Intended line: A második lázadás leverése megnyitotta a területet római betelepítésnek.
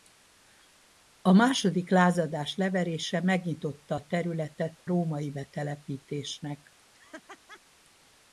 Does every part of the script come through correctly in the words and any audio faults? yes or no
no